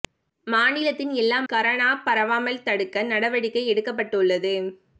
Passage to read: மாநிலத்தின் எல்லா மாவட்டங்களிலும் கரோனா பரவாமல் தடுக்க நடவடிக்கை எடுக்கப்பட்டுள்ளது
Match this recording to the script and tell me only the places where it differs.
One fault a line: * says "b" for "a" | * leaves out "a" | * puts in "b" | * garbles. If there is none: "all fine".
* leaves out "மாவட்டங்களிலும்"